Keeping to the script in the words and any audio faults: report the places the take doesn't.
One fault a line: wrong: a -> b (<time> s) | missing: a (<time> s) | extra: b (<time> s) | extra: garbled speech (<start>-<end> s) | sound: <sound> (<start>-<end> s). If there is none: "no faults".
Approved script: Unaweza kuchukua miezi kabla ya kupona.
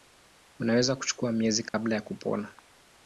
sound: dropout (1.7-1.7 s)